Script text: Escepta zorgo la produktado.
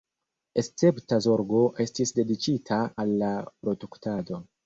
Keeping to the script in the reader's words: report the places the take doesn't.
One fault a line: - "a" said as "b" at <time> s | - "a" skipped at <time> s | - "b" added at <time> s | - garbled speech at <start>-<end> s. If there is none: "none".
- "estis dediĉita al" added at 1.9 s